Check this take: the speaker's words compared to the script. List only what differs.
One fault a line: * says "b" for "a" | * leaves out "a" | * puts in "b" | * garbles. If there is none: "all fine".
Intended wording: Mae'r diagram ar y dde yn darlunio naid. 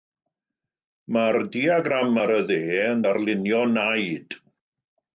all fine